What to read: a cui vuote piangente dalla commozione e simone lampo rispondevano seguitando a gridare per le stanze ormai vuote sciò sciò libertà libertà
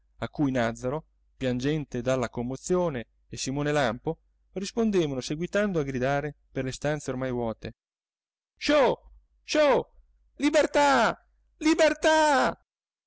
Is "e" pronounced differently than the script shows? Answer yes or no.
no